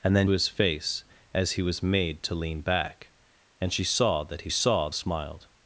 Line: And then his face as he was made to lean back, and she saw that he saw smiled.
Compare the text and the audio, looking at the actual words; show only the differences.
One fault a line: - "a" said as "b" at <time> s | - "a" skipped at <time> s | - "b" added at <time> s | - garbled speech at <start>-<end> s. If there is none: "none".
none